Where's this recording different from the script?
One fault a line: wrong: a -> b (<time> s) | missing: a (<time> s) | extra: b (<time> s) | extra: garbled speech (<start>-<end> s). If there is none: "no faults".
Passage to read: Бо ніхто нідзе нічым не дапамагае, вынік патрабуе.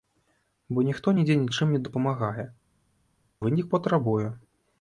no faults